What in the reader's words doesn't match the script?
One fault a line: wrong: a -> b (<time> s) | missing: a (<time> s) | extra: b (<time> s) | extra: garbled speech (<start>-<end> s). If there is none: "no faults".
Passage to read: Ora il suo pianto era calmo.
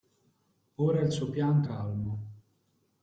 missing: era (1.7 s)